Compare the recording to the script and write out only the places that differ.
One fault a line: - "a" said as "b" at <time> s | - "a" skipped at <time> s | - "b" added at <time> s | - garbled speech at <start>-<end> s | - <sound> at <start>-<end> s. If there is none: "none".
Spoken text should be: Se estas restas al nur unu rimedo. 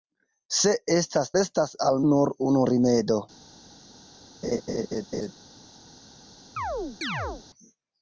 - laugh at 4.4-5.3 s
- chirp at 6.6-7.4 s